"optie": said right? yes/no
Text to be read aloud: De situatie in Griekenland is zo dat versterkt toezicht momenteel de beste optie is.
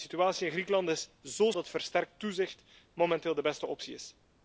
yes